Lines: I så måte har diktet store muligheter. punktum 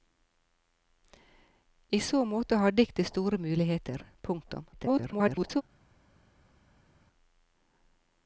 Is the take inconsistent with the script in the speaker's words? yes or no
yes